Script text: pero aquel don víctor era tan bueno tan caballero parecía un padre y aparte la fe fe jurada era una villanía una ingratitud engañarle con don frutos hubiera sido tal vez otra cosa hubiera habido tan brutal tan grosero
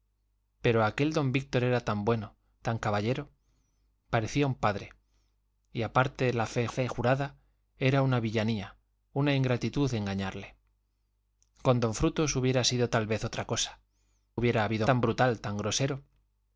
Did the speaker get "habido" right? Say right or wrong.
right